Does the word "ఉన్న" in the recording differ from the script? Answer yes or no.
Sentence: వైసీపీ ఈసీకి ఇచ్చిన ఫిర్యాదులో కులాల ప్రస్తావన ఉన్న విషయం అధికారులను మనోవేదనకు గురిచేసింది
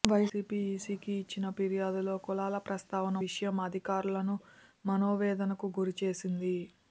yes